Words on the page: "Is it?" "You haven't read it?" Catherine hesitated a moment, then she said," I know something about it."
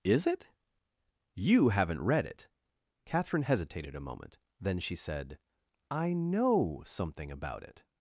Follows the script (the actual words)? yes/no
yes